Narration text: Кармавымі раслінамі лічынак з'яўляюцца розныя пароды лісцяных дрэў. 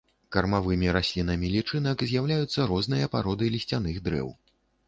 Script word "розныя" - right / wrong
right